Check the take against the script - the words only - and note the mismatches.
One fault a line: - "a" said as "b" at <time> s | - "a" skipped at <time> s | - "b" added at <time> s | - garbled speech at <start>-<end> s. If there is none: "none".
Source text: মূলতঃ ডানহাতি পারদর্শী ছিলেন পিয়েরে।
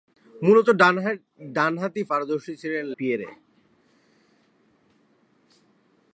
none